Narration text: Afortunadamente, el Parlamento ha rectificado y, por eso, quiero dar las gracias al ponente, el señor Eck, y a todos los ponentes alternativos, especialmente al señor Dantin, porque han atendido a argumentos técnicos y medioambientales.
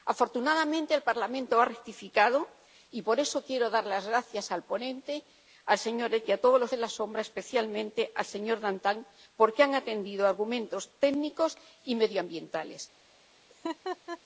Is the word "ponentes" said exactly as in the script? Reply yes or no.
no